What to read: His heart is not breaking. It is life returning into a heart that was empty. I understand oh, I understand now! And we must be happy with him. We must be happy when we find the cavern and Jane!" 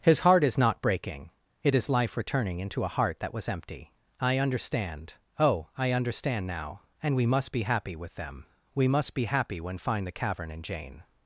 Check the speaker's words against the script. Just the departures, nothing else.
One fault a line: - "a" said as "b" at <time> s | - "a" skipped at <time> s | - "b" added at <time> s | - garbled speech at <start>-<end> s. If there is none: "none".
- "him" said as "them" at 8.2 s
- "we" skipped at 9.8 s